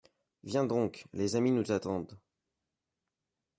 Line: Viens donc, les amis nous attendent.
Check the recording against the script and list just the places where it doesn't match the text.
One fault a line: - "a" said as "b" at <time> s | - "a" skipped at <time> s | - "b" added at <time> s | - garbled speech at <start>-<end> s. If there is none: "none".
none